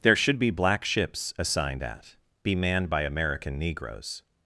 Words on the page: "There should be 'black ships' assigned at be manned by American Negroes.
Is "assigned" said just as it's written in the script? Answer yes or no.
yes